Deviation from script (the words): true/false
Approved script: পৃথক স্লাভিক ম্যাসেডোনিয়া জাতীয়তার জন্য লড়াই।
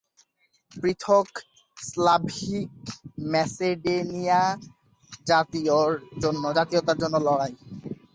false